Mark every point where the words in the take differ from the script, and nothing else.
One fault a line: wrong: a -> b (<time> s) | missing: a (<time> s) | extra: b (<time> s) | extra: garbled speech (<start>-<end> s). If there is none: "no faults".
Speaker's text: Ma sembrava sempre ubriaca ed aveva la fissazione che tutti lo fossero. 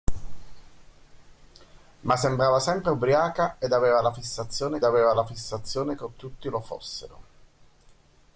extra: aveva la fissazione (4.8 s)